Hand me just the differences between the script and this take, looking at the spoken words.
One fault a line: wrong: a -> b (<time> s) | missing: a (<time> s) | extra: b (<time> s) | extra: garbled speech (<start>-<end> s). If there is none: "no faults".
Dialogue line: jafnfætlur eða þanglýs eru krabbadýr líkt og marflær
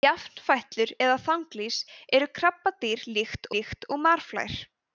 extra: líkt (3.6 s)